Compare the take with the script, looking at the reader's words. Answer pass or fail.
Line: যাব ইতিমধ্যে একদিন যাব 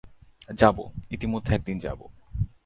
pass